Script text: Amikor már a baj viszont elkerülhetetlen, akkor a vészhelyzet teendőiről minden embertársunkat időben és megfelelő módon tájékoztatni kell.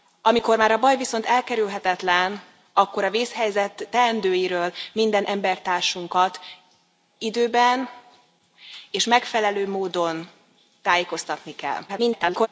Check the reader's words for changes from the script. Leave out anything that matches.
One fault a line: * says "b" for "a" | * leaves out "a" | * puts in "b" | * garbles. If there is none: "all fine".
* garbles